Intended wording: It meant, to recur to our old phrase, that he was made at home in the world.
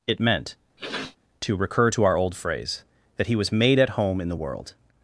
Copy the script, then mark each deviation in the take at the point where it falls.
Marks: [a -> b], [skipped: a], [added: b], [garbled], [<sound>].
It meant, [sniff] to recur to our old phrase, that he was made at home in the world.